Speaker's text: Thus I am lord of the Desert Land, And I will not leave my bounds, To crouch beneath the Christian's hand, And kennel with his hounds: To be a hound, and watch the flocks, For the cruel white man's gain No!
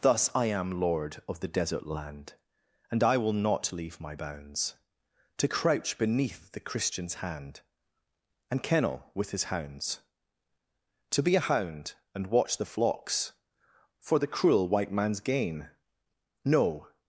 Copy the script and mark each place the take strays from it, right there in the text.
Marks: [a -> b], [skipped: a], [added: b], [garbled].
Thus I am lord of the Desert Land, And I will not leave my bounds, To crouch beneath the Christian's hand, And kennel with his hounds: To be a hound, and watch the flocks, For the cruel white man's gain No!